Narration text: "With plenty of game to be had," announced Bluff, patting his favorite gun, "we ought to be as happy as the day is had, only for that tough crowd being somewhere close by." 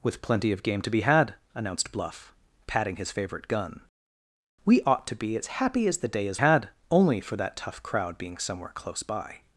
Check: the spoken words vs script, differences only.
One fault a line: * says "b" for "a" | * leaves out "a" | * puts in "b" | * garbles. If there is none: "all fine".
all fine